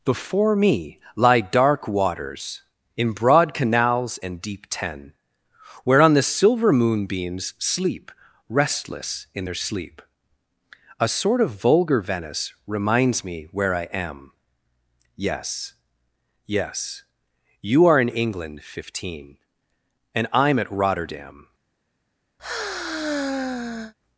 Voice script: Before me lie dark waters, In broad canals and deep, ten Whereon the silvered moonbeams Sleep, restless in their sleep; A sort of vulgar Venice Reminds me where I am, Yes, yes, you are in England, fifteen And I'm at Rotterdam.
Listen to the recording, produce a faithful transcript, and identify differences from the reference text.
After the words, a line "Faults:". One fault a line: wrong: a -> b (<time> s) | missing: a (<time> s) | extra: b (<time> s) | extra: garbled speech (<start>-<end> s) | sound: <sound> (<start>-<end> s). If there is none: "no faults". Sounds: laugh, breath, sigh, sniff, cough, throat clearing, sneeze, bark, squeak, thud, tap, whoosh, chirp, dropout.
Before me lie dark waters, In broad canals and deep, ten Whereon the silver moonbeams Sleep, restless in their sleep; A sort of vulgar Venice Reminds me where I am, Yes, yes, you are in England, fifteen And I'm at Rotterdam.
Faults:
wrong: silvered -> silver (6.2 s)
sound: sigh (22.4-23.9 s)